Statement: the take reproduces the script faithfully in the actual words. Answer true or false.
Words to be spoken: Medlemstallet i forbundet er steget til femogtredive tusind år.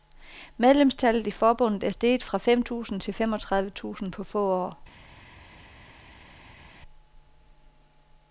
false